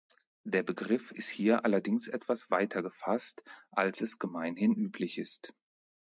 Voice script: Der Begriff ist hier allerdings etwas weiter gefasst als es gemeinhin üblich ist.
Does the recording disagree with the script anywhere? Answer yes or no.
no